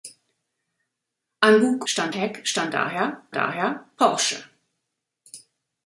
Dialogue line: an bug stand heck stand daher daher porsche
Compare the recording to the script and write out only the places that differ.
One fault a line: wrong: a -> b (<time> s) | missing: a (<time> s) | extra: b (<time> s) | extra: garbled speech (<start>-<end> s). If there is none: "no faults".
no faults